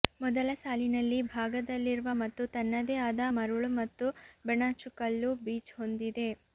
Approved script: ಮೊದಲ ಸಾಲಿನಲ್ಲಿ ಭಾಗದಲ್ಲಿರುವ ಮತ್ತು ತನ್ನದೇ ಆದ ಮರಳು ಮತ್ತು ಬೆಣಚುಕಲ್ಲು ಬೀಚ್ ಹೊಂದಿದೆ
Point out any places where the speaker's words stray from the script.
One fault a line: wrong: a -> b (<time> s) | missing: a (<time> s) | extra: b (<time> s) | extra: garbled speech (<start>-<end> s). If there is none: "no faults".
no faults